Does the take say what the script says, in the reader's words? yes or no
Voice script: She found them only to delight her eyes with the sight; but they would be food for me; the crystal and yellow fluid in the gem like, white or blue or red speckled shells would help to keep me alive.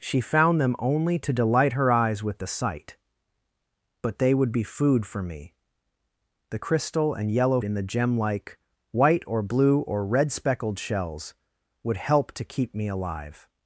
no